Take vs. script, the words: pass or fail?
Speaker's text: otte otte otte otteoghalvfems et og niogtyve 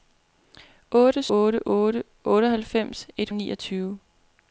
pass